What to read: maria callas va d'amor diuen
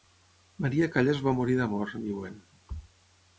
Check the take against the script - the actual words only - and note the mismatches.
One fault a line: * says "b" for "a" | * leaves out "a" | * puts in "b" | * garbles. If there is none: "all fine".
* puts in "morir"